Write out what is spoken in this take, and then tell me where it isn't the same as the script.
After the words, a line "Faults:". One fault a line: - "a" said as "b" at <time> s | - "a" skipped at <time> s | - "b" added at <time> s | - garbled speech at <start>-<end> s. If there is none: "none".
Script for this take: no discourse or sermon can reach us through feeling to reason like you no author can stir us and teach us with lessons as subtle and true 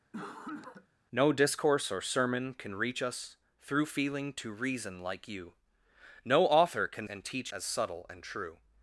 no discourse or sermon can reach us through feeling to reason like you no author can and teach as subtle and true
Faults:
- "stir us" skipped at 7.1 s
- "us with lessons" skipped at 7.5 s